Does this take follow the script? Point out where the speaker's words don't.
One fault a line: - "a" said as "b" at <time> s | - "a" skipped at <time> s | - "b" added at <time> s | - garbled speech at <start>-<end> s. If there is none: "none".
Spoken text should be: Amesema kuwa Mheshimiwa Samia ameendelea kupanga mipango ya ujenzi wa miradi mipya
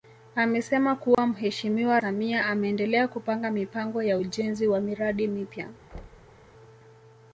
none